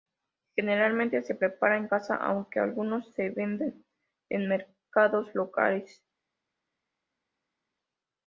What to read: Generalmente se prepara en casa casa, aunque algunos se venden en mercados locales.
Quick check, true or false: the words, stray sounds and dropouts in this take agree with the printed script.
false